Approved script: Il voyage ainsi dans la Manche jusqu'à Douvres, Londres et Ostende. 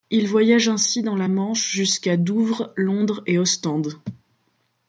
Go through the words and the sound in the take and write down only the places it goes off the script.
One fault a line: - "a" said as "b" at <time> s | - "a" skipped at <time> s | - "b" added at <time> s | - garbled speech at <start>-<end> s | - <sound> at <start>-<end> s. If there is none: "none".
none